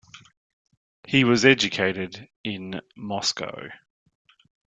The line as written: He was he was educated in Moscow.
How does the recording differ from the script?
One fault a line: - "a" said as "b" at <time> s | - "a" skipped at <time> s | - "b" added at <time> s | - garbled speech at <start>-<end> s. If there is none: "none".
- "he was" skipped at 1.4 s